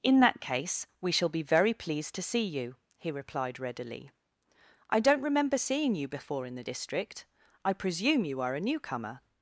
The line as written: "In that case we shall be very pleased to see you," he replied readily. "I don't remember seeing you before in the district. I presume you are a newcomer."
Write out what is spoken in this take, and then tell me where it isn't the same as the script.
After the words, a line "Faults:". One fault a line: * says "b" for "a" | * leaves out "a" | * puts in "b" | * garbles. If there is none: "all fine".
"In that case we shall be very pleased to see you," he replied readily. "I don't remember seeing you before in the district. I presume you are a newcomer."
Faults:
all fine